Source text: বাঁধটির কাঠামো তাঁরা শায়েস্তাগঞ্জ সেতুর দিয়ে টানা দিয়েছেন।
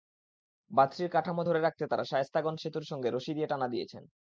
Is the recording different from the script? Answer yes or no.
yes